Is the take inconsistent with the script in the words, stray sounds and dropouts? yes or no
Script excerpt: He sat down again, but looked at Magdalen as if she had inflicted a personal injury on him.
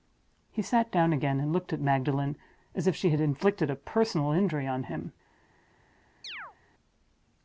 yes